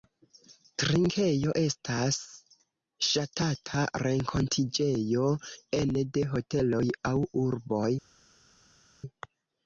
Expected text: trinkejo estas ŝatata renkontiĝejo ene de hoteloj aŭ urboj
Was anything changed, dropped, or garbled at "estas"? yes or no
no